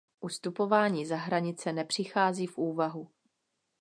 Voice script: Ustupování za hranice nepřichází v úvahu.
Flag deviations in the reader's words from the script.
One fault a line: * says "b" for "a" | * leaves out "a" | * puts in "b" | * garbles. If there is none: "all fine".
all fine